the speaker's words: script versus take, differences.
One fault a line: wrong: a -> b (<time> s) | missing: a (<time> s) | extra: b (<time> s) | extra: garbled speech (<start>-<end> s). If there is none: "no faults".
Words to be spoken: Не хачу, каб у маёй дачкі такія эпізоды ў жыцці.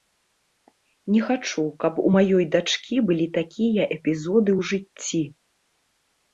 extra: былі (3.1 s)